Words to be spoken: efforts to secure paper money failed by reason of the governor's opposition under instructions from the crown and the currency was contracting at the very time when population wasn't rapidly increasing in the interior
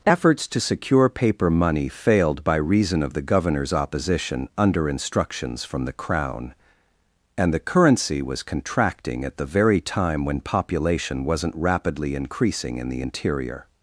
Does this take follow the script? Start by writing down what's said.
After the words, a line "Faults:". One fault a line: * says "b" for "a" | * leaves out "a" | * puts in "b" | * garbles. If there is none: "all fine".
efforts to secure paper money failed by reason of the governor's opposition under instructions from the crown and the currency was contracting at the very time when population wasn't rapidly increasing in the interior
Faults:
all fine